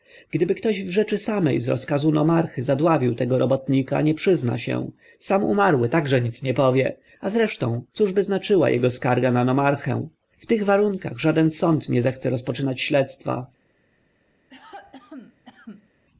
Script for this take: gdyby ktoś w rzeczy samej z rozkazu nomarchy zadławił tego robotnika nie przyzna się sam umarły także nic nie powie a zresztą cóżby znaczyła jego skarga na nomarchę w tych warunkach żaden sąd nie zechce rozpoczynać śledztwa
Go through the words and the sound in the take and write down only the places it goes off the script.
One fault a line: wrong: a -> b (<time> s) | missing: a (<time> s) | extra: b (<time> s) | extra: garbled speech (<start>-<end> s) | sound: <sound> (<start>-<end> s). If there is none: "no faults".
sound: cough (14.5-15.9 s)